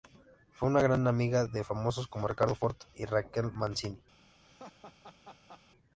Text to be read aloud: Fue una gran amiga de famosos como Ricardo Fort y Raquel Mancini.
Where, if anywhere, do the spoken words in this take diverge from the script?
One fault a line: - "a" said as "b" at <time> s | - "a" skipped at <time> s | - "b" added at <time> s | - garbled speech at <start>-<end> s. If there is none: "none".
none